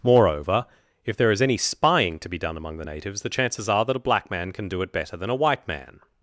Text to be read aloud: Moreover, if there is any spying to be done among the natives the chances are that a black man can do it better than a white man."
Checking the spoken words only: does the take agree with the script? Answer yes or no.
yes